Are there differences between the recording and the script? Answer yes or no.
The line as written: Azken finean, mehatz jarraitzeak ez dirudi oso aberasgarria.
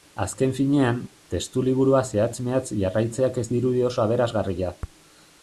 yes